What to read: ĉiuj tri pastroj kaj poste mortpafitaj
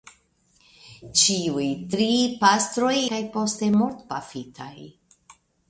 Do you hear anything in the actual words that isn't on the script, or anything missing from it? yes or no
no